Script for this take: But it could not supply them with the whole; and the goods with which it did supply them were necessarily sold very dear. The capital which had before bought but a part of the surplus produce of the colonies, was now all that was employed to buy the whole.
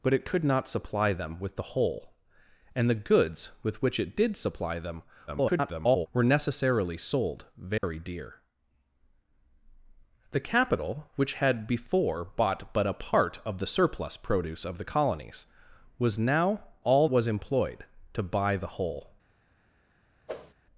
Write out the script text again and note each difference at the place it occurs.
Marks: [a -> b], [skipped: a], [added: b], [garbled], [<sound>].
But it could not supply them with the whole; and the goods with which it did supply them [garbled] were necessarily sold very [dropout] dear. The capital which had before bought but a part of the surplus produce of the colonies, was now all [skipped: that] was employed to buy the whole. [whoosh]